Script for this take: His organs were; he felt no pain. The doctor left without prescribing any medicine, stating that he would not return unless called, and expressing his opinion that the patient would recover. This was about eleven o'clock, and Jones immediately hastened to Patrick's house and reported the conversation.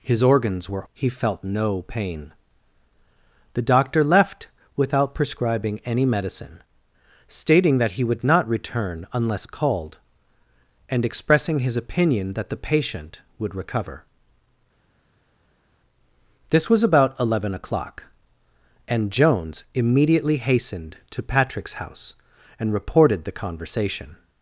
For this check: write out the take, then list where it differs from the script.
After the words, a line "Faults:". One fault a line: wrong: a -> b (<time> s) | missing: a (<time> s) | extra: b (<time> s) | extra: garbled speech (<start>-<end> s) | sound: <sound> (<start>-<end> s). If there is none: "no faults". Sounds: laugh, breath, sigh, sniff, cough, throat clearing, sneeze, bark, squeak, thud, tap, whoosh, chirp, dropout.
His organs were; he felt no pain. The doctor left without prescribing any medicine, stating that he would not return unless called, and expressing his opinion that the patient would recover. This was about eleven o'clock, and Jones immediately hastened to Patrick's house and reported the conversation.
Faults:
no faults